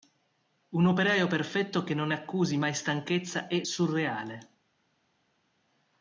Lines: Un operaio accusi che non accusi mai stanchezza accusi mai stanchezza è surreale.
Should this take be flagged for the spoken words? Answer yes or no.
yes